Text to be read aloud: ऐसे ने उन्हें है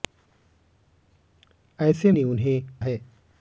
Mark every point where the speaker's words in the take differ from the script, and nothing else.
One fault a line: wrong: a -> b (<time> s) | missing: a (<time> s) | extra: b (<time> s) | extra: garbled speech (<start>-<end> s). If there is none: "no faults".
no faults